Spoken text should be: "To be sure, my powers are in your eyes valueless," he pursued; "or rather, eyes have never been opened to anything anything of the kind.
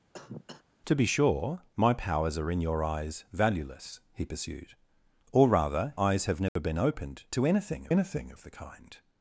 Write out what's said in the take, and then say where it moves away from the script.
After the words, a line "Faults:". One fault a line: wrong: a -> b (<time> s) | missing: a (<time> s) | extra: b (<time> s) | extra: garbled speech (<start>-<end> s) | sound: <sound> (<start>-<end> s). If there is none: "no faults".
"To be sure, my powers are in your eyes valueless," he pursued; "or rather, eyes have never been opened to anything anything of the kind.
Faults:
sound: cough (0.1-0.6 s)
sound: dropout (6.5-6.6 s)